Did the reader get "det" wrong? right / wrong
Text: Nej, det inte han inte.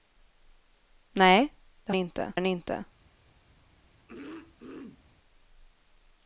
right